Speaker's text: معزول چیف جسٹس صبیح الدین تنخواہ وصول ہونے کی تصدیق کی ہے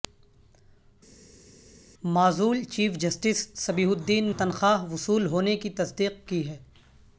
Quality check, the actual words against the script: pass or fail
pass